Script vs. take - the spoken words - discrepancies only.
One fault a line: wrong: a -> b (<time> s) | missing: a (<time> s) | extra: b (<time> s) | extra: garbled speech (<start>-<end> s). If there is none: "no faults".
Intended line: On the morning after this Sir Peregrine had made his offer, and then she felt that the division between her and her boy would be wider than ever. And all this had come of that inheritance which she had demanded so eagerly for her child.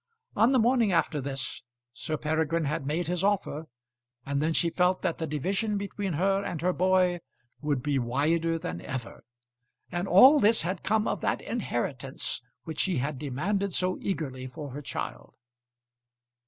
no faults